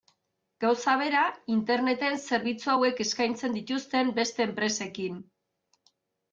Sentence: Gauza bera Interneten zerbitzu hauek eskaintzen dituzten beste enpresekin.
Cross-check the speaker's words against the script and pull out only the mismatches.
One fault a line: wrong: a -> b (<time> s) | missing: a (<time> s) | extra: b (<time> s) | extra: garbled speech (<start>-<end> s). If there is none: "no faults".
no faults